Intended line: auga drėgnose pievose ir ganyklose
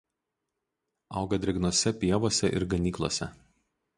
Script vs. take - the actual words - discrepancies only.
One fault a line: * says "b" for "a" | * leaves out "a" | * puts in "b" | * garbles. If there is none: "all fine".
all fine